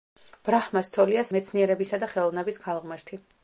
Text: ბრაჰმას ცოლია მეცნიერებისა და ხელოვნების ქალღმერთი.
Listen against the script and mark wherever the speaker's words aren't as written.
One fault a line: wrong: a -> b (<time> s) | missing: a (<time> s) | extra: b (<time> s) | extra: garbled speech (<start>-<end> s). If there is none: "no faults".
no faults